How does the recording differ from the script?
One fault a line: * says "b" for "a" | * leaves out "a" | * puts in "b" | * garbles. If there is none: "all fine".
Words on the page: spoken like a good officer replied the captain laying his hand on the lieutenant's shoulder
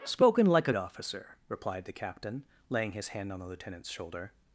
* leaves out "good"